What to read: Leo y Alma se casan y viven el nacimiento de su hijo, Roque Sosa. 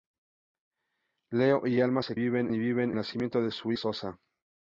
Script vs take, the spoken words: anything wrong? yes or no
yes